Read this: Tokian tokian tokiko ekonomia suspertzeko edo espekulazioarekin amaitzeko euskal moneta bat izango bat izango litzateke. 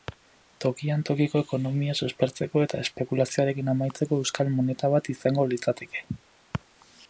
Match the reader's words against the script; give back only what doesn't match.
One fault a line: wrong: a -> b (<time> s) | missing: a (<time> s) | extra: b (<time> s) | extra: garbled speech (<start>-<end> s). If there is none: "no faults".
missing: tokian (1.0 s)
wrong: edo -> eta (2.6 s)
missing: bat izango (5.5 s)